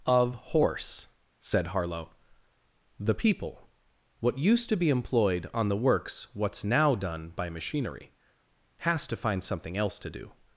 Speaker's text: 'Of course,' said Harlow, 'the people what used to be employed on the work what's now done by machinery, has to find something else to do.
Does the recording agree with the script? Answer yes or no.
no